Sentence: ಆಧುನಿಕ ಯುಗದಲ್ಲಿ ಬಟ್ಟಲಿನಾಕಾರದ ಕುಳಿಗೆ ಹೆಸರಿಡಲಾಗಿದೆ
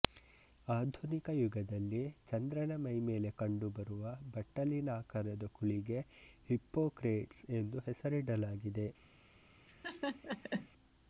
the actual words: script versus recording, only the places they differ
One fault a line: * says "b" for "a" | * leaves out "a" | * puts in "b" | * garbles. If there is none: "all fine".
* puts in "ಚಂದ್ರನ ಮೈಮೇಲೆ ಕಂಡುಬರುವ"
* puts in "ಹಿಪ್ಪೊಕ್ರೇಟ್ಸ್ ಎಂದು"